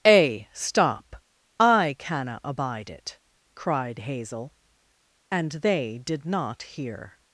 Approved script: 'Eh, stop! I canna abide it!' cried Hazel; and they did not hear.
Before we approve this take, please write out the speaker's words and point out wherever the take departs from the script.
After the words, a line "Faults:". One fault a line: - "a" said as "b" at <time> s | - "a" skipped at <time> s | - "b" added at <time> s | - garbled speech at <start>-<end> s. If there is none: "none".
'Eh, stop! I canna abide it!' cried Hazel; and they did not hear.
Faults:
none